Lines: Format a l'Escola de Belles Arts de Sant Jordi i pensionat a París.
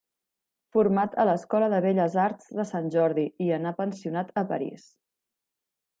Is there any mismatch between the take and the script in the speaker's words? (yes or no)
yes